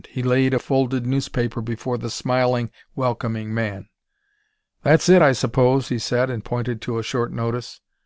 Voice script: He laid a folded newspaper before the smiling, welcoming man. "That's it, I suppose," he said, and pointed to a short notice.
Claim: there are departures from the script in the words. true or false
false